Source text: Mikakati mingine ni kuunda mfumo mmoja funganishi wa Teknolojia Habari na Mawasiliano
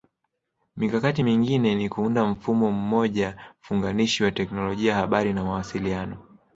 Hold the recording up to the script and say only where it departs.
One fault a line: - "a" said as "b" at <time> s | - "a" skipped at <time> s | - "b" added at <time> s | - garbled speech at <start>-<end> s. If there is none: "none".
none